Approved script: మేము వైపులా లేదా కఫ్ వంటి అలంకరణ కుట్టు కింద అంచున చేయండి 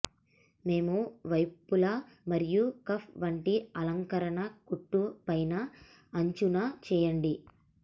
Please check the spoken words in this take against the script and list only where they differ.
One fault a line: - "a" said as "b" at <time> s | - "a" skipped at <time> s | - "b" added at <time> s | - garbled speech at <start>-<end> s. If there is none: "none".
- "లేదా" said as "మరియు" at 2.3 s
- "కింద" said as "పైన" at 5.3 s